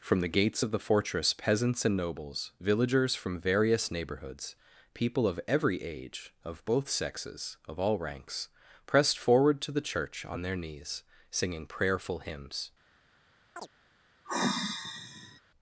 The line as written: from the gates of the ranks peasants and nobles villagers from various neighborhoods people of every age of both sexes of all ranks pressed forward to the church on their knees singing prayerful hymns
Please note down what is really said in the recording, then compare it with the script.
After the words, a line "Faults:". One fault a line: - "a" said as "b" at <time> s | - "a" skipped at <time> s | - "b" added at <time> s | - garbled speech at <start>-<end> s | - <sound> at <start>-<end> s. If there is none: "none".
from the gates of the fortress peasants and nobles villagers from various neighborhoods people of every age of both sexes of all ranks pressed forward to the church on their knees singing prayerful hymns
Faults:
- "ranks" said as "fortress" at 0.8 s
- chirp at 13.6-13.7 s
- sigh at 14.2-15.4 s